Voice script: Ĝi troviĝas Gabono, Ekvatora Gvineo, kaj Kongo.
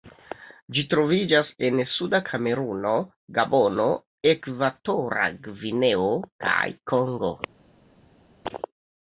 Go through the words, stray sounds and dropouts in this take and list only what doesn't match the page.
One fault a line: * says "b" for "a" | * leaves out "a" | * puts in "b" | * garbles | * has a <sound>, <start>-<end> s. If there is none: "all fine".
* puts in "en suda Kameruno"